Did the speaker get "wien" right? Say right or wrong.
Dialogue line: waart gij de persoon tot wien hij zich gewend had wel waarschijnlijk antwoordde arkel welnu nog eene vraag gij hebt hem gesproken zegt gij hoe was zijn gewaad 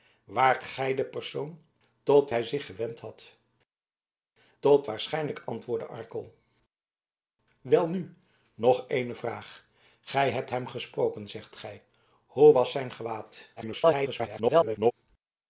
wrong